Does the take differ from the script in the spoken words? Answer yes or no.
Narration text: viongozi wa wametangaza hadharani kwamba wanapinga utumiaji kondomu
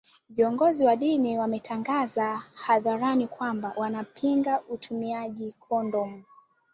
yes